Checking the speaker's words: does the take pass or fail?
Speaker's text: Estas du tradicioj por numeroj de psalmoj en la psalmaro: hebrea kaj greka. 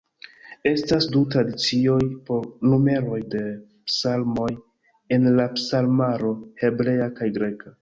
pass